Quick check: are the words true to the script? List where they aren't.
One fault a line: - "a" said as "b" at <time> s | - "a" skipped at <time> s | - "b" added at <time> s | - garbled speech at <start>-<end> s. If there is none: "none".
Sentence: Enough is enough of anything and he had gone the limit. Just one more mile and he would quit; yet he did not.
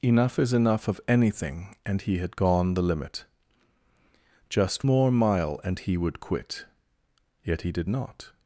- "one" skipped at 4.9 s